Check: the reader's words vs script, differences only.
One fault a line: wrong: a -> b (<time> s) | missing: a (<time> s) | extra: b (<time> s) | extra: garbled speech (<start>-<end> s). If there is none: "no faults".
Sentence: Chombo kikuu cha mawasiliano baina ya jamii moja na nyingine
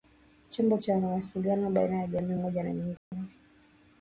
missing: kikuu (0.8 s)